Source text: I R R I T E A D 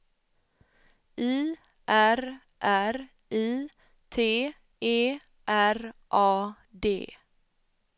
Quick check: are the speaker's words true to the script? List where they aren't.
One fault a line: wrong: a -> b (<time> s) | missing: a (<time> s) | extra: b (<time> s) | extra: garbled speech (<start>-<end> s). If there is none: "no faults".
extra: R (5.5 s)